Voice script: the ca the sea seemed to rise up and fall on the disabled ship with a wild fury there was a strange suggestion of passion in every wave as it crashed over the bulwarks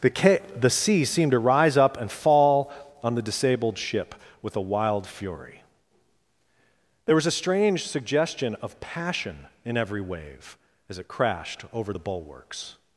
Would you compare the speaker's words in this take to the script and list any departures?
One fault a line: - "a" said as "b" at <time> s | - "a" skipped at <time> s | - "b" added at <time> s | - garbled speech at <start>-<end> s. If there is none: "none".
none